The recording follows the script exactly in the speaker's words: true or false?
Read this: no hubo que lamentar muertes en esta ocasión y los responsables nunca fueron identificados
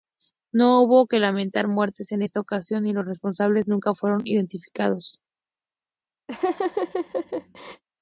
true